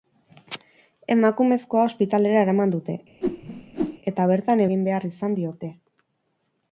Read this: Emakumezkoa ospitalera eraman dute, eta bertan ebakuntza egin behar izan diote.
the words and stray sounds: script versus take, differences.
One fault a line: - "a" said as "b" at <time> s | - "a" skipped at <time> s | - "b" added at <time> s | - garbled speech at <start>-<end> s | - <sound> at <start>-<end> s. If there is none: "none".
- whoosh at 3.2-4.0 s
- "ebakuntza" skipped at 4.6 s